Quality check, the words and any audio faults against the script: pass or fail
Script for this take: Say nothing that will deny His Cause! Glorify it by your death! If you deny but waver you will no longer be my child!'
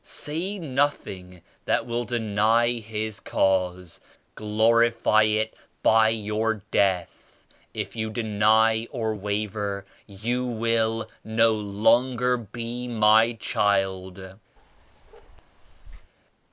fail